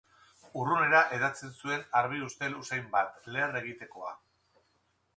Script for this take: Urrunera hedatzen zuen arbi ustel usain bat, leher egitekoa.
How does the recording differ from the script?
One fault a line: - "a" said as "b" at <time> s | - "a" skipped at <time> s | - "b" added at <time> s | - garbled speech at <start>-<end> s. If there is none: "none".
none